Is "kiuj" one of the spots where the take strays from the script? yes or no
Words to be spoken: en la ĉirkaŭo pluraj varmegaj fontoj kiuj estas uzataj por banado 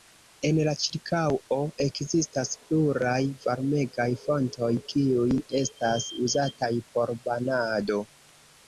no